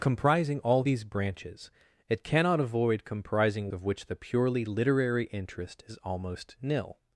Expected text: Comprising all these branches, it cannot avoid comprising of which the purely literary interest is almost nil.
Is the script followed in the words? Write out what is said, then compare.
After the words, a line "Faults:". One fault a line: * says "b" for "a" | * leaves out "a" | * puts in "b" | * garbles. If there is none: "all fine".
Comprising all these branches, it cannot avoid comprising of which the purely literary interest is almost nil.
Faults:
all fine